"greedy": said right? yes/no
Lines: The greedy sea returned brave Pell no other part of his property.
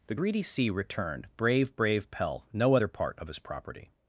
yes